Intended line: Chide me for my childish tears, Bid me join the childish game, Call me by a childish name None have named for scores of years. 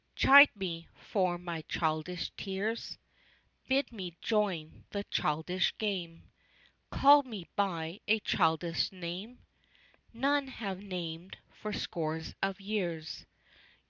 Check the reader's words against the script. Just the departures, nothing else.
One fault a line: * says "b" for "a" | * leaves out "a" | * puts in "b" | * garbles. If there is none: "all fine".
all fine